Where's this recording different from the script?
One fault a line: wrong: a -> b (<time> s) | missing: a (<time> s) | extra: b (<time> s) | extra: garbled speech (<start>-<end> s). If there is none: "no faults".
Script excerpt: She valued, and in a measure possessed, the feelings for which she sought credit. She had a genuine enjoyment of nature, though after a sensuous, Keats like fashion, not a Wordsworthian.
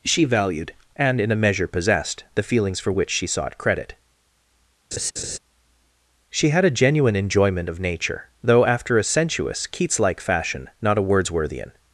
no faults